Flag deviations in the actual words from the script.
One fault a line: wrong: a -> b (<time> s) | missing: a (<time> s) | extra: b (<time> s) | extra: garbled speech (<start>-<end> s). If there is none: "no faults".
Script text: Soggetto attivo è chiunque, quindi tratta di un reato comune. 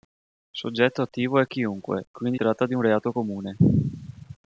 no faults